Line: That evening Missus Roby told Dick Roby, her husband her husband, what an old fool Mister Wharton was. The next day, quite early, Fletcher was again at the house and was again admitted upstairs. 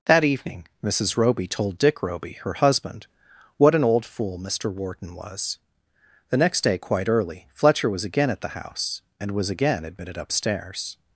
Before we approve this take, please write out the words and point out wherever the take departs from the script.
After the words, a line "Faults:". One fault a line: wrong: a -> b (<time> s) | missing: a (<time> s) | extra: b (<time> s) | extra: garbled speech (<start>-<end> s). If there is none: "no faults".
That evening Missus Roby told Dick Roby, her husband, what an old fool Mister Wharton was. The next day, quite early, Fletcher was again at the house and was again admitted upstairs.
Faults:
missing: her husband (3.1 s)